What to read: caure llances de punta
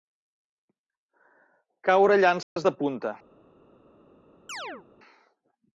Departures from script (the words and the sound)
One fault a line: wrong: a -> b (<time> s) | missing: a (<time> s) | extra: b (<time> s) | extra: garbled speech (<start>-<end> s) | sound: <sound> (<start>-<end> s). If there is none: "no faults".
sound: dropout (2.4-2.6 s)
sound: chirp (4.5-4.9 s)